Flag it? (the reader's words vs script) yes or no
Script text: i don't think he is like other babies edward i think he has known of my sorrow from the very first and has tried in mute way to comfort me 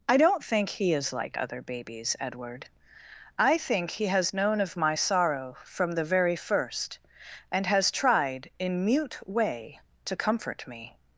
no